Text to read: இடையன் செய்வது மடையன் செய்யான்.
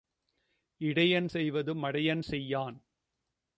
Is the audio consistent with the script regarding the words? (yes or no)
yes